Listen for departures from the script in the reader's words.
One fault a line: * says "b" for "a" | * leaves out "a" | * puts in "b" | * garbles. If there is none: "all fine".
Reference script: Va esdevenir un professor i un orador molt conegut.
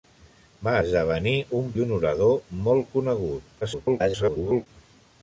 * leaves out "professor"
* garbles